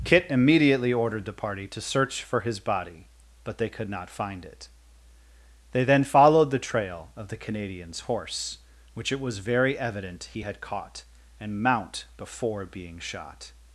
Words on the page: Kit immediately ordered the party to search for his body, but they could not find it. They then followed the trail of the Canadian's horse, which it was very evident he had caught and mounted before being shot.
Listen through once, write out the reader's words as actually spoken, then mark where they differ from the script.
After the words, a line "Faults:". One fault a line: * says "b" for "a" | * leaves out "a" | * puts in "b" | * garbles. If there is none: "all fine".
Kit immediately ordered the party to search for his body, but they could not find it. They then followed the trail of the Canadian's horse, which it was very evident he had caught and mount before being shot.
Faults:
* says "mount" for "mounted"